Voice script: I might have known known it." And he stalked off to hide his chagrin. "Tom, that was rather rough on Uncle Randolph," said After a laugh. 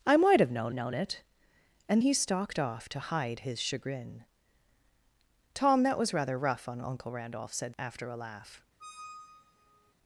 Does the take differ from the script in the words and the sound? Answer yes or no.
yes